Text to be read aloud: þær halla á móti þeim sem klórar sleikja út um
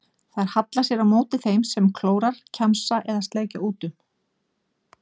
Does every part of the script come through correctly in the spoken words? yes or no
no